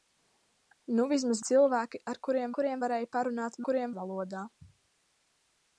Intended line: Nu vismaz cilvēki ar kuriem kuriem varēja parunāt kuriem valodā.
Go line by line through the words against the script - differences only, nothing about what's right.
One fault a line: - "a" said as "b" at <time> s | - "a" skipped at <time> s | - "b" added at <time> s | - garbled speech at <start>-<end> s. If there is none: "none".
none